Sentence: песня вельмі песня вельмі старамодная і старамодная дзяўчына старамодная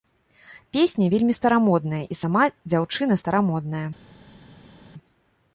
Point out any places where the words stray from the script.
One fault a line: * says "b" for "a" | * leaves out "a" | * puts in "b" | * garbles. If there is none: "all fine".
* leaves out "песня вельмі"
* says "сама" for "старамодная"